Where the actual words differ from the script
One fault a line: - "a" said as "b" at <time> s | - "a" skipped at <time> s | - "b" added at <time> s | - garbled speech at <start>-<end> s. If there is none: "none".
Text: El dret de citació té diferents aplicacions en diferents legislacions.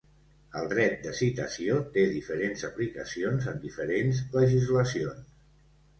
none